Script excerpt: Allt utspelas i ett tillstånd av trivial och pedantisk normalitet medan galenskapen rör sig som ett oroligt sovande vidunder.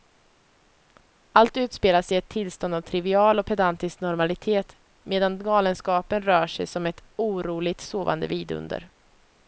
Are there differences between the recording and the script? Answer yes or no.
no